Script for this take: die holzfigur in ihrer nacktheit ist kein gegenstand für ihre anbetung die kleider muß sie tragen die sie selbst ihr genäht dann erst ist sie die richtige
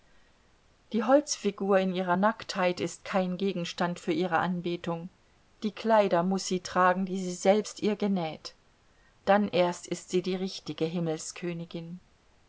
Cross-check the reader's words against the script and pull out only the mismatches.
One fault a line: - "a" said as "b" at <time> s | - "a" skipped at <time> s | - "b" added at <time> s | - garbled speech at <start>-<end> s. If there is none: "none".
none